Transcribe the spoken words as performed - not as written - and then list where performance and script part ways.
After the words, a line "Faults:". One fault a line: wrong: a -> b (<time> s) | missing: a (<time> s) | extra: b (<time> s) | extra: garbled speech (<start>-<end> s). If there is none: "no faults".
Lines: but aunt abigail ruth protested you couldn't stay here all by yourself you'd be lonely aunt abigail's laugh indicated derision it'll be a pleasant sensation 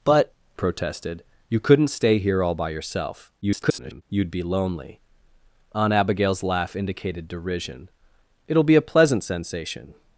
but protested you couldn't stay here all by yourself [garbled] you'd be lonely aunt abigail's laugh indicated derision it'll be a pleasant sensation
Faults:
missing: aunt abigail ruth (0.3 s)
extra: garbled speech (3.4-4.0 s)